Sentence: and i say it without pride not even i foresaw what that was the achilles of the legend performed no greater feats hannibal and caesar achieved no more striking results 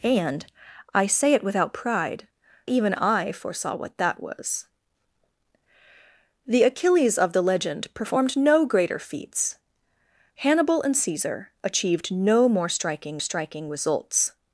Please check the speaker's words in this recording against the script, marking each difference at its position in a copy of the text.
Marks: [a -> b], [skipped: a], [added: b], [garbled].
and i say it without pride [skipped: not] even i foresaw what that was the achilles of the legend performed no greater feats hannibal and caesar achieved no more striking [added: striking] results